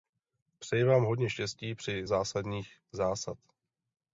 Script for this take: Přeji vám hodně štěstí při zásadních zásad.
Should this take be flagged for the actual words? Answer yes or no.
no